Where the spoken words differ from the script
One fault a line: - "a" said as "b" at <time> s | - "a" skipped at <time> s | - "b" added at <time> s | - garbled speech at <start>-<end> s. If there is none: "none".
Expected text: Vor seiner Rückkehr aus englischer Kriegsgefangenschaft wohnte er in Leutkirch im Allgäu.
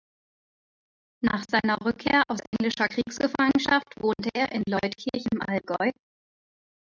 - "Vor" said as "Nach" at 1.2 s